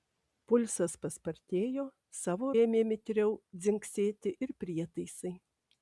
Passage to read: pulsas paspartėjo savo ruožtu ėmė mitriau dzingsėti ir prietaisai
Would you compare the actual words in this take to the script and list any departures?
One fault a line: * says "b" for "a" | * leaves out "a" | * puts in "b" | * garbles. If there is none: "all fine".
* leaves out "ruožtu"